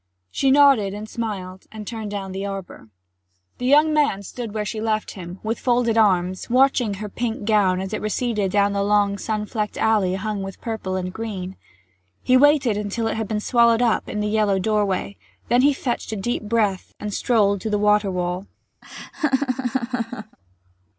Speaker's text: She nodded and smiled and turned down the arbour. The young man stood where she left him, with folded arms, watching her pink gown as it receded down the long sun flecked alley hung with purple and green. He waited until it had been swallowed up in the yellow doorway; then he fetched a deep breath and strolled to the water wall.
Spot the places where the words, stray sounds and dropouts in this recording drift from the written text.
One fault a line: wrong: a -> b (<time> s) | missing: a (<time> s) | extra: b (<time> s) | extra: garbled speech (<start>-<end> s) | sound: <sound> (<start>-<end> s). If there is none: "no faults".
sound: laugh (18.8-20.4 s)